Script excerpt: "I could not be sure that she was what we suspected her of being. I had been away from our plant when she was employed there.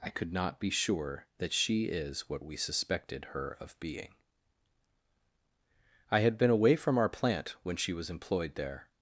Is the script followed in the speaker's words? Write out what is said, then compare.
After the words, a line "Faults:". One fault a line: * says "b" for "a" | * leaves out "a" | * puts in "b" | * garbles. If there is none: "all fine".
"I could not be sure that she is what we suspected her of being. I had been away from our plant when she was employed there.
Faults:
* says "is" for "was"